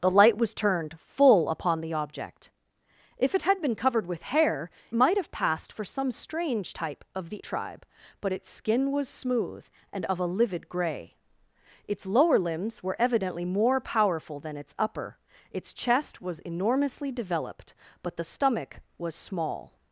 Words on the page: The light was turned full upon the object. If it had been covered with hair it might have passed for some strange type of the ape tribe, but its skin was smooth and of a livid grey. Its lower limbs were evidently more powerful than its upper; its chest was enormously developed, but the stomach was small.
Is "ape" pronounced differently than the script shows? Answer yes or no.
yes